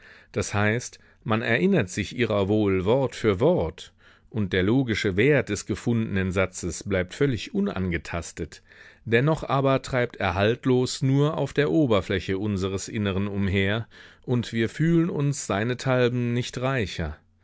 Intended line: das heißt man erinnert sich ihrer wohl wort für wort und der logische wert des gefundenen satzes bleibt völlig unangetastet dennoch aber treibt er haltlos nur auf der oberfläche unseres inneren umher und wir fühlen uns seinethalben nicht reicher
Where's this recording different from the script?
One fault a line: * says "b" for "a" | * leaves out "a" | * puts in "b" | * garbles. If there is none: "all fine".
all fine